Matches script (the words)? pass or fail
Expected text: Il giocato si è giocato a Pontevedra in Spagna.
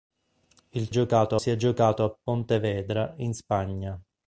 pass